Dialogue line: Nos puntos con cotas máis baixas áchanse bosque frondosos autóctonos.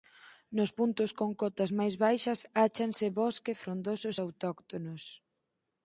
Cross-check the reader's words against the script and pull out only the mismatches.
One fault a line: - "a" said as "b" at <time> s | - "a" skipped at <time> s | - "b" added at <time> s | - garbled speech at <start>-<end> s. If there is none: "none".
none